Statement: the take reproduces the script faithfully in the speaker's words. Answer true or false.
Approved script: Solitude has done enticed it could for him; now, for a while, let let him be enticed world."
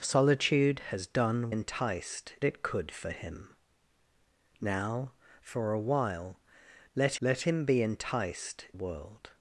true